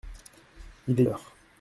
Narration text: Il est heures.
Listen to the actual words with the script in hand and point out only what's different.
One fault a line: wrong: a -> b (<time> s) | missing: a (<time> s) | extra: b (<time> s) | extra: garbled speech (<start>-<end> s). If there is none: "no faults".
no faults